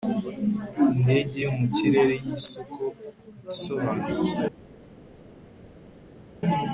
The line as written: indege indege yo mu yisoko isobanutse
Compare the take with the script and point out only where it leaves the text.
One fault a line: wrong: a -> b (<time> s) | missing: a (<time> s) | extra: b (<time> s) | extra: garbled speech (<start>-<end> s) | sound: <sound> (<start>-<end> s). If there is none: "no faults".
missing: indege (1.4 s)
extra: kirere (1.7 s)